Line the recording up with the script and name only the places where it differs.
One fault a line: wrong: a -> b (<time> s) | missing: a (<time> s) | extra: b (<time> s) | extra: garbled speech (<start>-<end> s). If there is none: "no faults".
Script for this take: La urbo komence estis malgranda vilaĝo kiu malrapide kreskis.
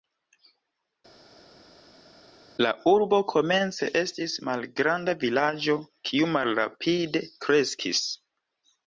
no faults